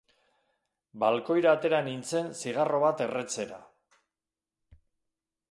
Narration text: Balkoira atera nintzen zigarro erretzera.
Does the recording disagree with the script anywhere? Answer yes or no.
yes